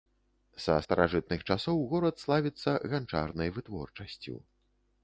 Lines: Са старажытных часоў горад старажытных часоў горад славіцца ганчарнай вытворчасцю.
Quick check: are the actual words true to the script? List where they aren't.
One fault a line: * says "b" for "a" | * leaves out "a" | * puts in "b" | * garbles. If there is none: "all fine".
* leaves out "старажытных часоў горад"